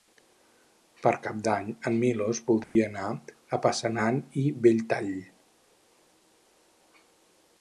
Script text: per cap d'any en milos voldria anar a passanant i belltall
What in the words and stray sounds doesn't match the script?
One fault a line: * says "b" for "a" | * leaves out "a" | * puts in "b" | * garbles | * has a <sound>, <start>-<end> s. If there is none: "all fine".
* has a dropout, 2.6-2.8 s